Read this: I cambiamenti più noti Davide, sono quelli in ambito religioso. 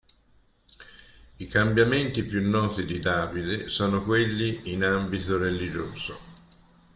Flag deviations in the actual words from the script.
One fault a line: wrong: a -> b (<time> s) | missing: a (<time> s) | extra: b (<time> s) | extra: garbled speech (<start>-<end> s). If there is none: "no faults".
extra: di (2.9 s)